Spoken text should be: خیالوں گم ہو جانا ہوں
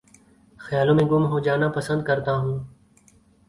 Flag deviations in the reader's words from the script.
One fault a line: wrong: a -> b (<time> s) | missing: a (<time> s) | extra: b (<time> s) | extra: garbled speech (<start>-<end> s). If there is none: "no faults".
extra: میں (1.0 s)
extra: پسند کرتا (1.8 s)